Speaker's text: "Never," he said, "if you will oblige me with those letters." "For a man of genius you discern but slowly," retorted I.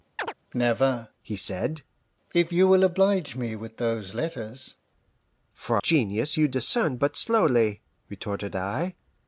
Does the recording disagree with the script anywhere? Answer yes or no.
yes